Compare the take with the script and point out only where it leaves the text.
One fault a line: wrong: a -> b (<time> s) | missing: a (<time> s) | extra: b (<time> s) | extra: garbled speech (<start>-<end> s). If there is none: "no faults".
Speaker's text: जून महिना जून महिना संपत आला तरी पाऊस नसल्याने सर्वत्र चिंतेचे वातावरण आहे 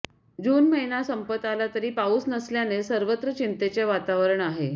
missing: जून महिना (1.0 s)